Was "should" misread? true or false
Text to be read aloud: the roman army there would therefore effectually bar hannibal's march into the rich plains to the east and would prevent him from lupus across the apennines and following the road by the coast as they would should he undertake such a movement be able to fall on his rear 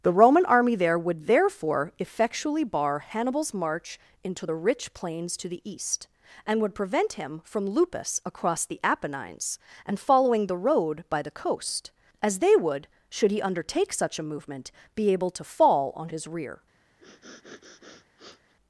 false